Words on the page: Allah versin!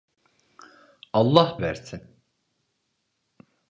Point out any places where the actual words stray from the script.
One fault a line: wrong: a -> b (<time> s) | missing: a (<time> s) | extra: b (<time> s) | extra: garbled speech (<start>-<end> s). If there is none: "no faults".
no faults